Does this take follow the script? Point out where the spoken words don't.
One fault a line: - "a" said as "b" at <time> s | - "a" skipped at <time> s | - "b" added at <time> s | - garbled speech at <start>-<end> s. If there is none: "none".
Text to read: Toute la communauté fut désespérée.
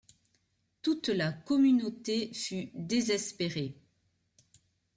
none